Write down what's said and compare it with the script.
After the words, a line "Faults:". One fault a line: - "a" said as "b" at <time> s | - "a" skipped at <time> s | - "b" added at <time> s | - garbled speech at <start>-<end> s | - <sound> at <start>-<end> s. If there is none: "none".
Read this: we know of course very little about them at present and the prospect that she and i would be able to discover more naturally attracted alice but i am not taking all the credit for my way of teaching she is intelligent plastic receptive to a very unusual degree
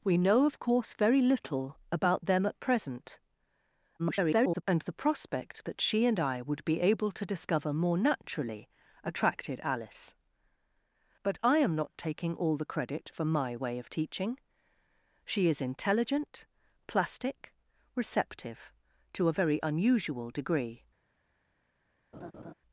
we know of course very little about them at present [garbled] and the prospect that she and i would be able to discover more naturally attracted alice but i am not taking all the credit for my way of teaching she is intelligent plastic receptive to a very unusual degree
Faults:
- garbled speech at 4.0-4.6 s
- laugh at 22.1-22.5 s